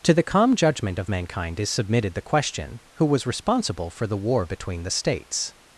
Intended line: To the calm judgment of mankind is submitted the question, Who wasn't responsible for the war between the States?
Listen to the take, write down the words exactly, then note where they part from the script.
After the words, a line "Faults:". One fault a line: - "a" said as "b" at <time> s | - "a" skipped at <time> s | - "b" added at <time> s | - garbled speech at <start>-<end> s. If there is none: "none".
To the calm judgment of mankind is submitted the question, Who was responsible for the war between the States?
Faults:
- "wasn't" said as "was" at 3.0 s